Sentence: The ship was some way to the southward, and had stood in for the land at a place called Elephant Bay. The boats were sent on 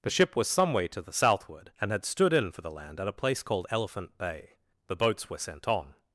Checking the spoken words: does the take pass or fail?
pass